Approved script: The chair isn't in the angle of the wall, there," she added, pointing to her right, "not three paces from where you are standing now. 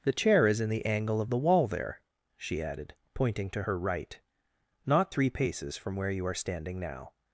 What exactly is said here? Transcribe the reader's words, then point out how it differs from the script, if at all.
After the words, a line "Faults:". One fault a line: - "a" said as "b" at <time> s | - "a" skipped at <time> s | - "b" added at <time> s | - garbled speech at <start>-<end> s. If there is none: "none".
The chair is in the angle of the wall, there," she added, pointing to her right, "not three paces from where you are standing now.
Faults:
- "isn't" said as "is" at 0.5 s